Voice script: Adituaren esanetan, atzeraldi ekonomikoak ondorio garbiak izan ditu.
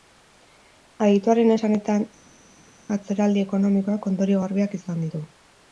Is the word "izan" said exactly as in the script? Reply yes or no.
yes